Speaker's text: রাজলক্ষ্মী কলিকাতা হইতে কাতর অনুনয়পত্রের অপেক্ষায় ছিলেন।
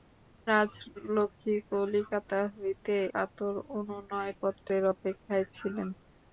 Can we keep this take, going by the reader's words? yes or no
yes